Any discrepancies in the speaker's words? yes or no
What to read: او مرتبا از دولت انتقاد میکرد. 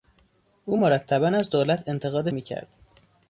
no